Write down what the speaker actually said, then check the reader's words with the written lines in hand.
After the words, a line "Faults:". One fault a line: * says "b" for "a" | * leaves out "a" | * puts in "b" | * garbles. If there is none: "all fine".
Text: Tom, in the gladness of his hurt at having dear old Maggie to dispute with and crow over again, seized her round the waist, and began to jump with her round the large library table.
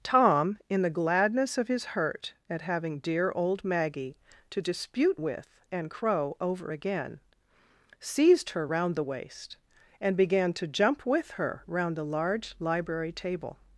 Tom, in the gladness of his hurt at having dear old Maggie to dispute with and crow over again, seized her round the waist, and began to jump with her round the large library table.
Faults:
all fine